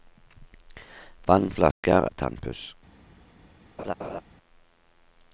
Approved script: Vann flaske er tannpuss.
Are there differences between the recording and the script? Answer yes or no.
no